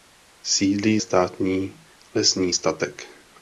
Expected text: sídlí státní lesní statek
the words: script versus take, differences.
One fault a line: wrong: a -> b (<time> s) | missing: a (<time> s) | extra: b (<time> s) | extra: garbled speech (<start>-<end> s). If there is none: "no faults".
no faults